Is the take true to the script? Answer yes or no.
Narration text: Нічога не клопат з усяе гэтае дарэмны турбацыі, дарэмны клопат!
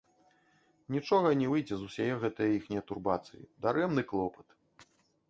no